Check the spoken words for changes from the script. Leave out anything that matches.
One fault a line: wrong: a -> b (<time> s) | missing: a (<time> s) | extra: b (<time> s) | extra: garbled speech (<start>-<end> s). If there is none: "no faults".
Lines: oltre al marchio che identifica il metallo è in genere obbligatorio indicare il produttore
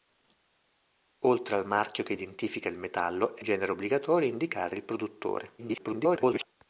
missing: in (3.4 s)
extra: garbled speech (5.6-6.5 s)